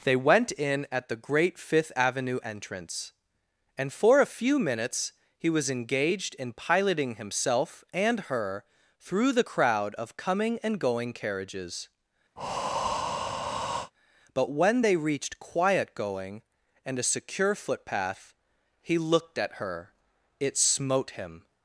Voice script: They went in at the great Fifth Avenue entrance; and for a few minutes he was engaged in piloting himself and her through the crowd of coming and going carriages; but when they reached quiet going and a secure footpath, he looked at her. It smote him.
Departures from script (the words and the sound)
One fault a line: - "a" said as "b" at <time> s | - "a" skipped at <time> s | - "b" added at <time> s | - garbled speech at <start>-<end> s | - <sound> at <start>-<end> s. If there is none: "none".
- breath at 12.4-13.9 s